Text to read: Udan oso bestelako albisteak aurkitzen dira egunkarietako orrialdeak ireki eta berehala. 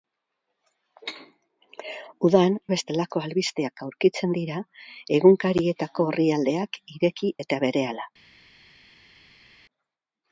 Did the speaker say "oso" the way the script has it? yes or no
no